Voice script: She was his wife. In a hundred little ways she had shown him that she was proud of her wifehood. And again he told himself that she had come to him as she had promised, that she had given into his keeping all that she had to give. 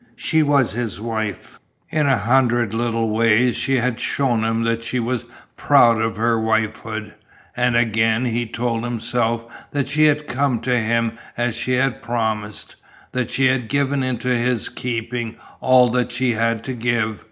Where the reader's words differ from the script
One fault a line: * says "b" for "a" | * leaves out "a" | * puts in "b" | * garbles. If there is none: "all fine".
all fine